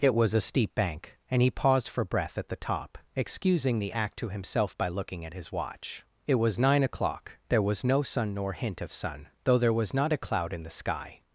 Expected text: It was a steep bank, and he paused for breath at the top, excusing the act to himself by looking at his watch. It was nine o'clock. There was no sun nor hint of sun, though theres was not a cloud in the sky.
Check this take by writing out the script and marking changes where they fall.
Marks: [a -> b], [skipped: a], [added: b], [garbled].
It was a steep bank, and he paused for breath at the top, excusing the act to himself by looking at his watch. It was nine o'clock. There was no sun nor hint of sun, though [theres -> there] was not a cloud in the sky.